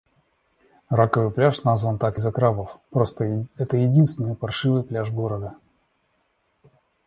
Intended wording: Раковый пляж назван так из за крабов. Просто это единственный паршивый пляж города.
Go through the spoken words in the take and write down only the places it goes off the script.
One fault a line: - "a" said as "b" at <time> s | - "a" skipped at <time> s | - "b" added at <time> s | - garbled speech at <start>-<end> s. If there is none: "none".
none